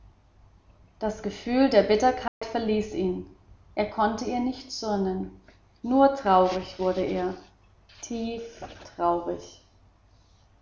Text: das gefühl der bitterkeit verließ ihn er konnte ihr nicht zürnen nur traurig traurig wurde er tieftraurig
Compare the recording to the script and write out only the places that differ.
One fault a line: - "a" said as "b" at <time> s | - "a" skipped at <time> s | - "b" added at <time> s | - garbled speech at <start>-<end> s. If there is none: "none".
- "traurig" skipped at 6.8 s